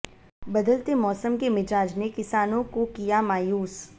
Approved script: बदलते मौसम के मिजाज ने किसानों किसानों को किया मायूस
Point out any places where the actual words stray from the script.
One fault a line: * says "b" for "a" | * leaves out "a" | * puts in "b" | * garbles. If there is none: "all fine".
* leaves out "किसानों"